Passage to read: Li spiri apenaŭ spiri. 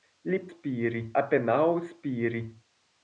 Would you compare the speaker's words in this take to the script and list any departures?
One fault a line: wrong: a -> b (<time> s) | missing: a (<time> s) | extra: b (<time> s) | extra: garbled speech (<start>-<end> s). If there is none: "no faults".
no faults